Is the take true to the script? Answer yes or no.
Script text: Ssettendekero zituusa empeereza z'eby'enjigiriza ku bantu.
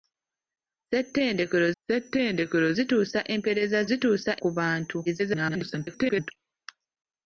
no